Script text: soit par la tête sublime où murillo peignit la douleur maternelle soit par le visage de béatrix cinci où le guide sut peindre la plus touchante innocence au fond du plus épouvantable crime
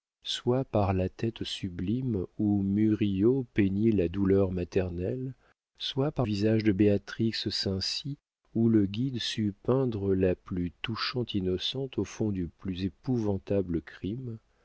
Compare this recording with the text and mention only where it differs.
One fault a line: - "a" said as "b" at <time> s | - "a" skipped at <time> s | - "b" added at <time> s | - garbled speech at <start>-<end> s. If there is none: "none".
- "le" skipped at 6.3 s